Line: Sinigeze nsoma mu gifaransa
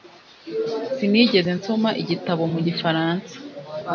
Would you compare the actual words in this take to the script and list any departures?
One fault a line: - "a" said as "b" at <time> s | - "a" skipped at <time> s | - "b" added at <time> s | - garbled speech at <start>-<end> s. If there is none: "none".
- "igitabo" added at 2.0 s